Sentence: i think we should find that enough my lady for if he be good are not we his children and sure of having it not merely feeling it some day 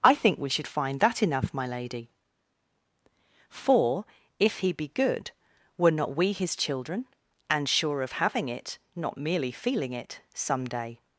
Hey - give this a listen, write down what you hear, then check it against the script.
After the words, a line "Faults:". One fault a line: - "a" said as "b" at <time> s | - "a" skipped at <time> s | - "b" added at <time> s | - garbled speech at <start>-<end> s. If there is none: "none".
i think we should find that enough my lady for if he be good were not we his children and sure of having it not merely feeling it some day
Faults:
- "are" said as "were" at 5.8 s